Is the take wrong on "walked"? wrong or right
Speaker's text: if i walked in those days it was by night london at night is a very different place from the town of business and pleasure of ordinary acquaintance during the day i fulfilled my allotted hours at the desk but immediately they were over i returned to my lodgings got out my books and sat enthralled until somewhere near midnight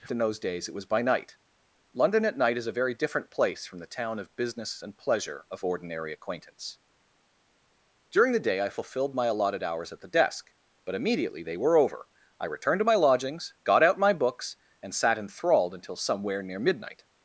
wrong